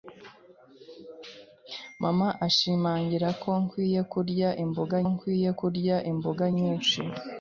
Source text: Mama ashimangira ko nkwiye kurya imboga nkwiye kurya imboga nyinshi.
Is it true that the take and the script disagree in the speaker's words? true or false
false